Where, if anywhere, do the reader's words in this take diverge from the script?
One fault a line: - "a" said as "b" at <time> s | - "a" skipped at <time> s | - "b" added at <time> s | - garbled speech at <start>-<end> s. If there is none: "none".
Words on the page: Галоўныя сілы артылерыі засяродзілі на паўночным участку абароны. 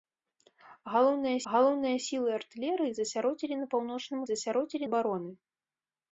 - "галоўныя" added at 1.5 s
- "участку" said as "засяродзілі" at 4.3 s